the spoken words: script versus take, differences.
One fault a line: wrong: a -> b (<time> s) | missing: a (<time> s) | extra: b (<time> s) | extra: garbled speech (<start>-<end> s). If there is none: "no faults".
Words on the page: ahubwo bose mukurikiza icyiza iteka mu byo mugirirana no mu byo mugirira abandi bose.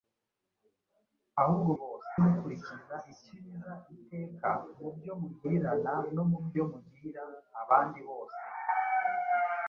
no faults